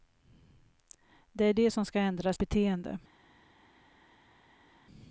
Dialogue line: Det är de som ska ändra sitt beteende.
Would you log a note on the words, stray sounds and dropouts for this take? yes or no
yes